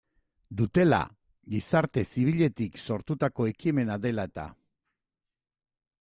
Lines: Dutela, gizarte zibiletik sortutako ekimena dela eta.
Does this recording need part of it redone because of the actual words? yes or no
no